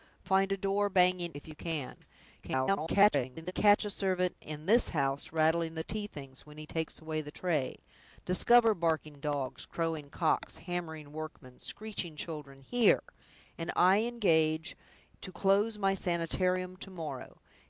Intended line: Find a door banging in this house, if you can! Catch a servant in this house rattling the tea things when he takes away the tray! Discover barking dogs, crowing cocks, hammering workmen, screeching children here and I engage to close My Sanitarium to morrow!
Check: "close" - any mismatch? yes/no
no